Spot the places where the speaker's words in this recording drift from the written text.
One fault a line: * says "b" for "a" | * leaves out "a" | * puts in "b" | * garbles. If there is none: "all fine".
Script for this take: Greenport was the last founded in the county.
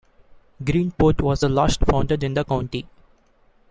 all fine